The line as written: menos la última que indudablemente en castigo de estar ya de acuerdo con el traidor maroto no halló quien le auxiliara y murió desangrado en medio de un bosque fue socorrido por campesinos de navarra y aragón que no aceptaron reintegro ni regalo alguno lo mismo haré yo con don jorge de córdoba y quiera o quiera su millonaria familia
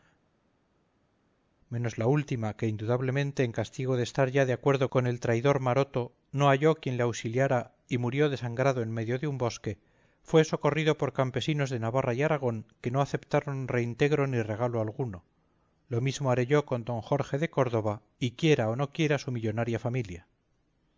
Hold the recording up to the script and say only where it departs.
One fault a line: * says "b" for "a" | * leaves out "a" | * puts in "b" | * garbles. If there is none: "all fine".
* puts in "no"